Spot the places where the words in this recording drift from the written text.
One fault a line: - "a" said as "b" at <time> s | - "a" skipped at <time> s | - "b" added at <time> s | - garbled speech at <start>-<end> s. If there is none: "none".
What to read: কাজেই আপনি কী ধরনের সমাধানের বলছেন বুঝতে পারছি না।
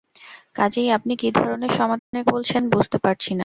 none